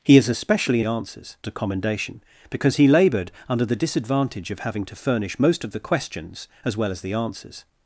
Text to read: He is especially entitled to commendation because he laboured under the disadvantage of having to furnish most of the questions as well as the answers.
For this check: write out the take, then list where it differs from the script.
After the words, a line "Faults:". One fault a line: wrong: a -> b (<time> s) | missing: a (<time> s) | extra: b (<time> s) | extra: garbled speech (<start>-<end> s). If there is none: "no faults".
He is especially answers to commendation because he laboured under the disadvantage of having to furnish most of the questions as well as the answers.
Faults:
wrong: entitled -> answers (0.8 s)